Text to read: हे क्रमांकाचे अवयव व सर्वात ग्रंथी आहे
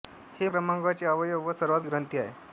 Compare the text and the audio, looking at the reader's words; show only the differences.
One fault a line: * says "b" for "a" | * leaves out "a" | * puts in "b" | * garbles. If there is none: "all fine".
all fine